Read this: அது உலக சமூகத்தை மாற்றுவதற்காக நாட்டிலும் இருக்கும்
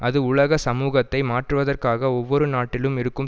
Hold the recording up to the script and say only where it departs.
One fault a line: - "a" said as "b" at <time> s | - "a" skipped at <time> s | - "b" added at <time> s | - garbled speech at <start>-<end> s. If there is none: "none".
- "ஒவ்வொரு" added at 2.2 s